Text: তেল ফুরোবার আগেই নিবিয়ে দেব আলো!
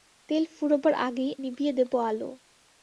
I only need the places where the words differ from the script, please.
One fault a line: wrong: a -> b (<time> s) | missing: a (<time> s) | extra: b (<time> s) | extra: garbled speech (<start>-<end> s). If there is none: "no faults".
no faults